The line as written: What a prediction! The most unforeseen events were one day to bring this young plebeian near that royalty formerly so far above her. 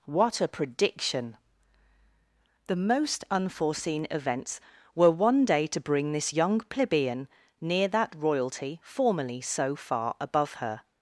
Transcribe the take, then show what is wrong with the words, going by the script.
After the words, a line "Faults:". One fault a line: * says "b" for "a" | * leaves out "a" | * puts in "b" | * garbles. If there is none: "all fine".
What a prediction! The most unforeseen events were one day to bring this young plebeian near that royalty formerly so far above her.
Faults:
all fine